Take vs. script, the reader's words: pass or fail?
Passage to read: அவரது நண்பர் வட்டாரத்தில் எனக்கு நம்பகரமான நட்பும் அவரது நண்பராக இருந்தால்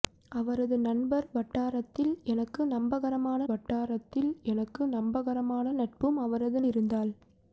fail